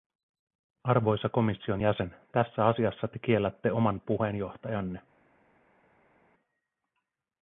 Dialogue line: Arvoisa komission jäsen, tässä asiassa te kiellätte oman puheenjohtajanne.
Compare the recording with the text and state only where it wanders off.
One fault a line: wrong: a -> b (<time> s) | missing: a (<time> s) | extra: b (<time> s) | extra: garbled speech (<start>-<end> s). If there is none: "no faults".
no faults